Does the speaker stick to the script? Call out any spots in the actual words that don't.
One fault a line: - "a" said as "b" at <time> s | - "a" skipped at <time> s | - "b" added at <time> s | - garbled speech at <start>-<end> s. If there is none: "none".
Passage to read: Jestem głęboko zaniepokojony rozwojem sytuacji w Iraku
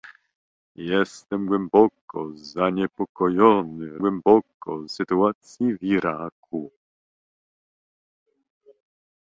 - "rozwojem" said as "głęboko" at 4.0 s